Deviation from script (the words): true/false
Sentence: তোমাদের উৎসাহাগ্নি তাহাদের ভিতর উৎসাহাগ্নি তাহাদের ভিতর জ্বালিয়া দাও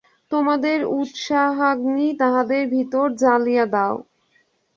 true